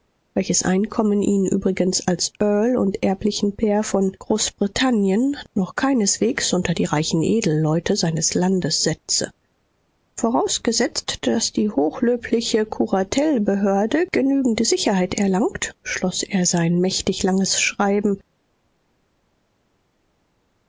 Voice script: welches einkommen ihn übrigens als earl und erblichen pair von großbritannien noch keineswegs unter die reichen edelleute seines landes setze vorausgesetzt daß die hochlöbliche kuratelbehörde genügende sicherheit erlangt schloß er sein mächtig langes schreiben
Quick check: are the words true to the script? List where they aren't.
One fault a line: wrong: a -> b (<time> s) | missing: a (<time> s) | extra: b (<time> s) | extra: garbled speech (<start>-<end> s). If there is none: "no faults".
no faults